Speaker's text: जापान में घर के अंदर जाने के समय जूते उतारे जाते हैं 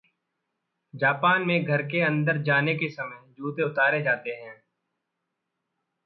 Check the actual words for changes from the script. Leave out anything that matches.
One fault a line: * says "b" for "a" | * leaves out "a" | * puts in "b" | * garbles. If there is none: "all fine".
all fine